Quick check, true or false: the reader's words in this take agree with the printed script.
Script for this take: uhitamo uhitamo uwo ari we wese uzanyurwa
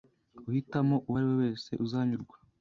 false